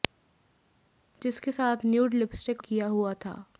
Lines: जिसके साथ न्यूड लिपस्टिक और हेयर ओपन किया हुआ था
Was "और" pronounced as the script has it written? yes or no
no